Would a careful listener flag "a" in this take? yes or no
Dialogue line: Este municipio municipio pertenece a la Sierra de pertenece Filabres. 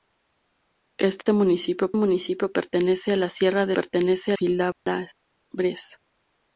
no